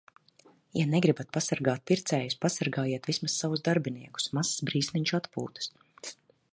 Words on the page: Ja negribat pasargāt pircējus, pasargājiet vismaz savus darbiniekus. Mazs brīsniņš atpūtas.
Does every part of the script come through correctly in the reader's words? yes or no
yes